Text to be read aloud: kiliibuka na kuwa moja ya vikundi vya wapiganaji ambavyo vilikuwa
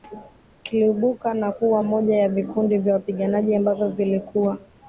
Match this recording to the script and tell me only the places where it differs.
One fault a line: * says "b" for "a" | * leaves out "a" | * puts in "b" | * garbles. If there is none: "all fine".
all fine